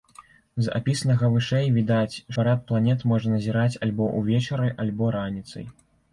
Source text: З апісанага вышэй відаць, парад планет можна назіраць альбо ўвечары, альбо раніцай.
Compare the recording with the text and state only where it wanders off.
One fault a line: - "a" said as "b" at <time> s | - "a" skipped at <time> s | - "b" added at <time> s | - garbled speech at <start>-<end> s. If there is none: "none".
none